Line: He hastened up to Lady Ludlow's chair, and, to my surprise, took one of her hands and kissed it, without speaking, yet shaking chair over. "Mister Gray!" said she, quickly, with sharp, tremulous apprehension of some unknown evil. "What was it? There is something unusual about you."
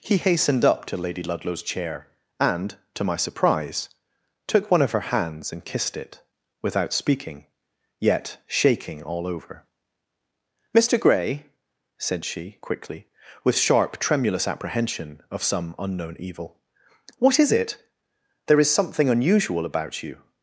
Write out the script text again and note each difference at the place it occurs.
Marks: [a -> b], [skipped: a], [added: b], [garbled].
He hastened up to Lady Ludlow's chair, and, to my surprise, took one of her hands and kissed it, without speaking, yet shaking [chair -> all] over. "Mister Gray!" said she, quickly, with sharp, tremulous apprehension of some unknown evil. "What [was -> is] it? There is something unusual about you."